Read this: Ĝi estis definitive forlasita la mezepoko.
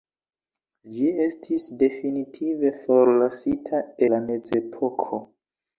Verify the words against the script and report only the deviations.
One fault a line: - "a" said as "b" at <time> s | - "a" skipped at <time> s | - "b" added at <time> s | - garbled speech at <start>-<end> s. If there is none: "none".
none